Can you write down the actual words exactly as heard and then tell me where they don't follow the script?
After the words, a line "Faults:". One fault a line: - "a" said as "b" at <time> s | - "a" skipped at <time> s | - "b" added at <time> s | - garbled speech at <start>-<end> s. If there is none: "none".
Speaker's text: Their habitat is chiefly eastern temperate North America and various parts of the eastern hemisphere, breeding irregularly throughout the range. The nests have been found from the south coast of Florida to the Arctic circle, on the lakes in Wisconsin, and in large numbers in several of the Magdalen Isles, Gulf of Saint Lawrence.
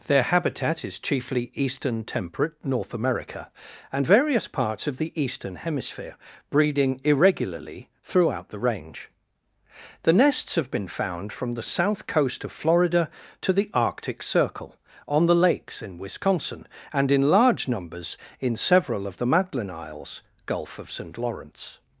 Their habitat is chiefly eastern temperate North America and various parts of the eastern hemisphere, breeding irregularly throughout the range. The nests have been found from the south coast of Florida to the Arctic circle, on the lakes in Wisconsin, and in large numbers in several of the Magdalen Isles, Gulf of Saint Lawrence.
Faults:
none